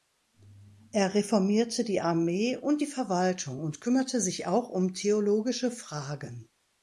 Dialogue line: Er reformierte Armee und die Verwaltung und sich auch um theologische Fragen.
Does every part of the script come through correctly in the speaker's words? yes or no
no